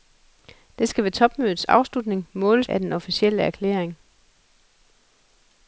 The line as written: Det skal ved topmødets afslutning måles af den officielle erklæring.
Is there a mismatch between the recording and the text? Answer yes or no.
no